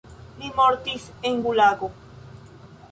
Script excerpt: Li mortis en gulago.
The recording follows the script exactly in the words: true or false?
true